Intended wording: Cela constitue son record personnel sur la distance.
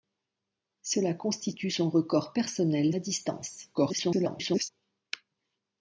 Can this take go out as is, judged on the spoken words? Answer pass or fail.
fail